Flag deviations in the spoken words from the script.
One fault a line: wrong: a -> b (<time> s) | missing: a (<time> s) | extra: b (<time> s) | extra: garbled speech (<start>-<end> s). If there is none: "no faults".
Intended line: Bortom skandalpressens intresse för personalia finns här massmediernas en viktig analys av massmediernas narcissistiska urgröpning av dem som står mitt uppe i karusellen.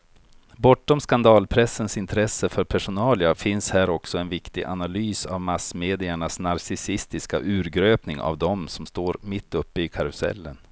wrong: massmediernas -> också (3.9 s)